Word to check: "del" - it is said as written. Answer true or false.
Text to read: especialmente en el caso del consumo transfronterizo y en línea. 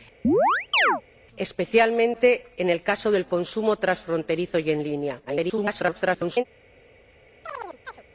true